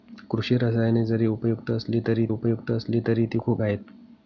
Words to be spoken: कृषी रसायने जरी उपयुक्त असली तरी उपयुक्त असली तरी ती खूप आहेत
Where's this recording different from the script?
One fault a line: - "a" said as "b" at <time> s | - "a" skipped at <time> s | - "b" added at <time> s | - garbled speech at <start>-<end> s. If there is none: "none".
none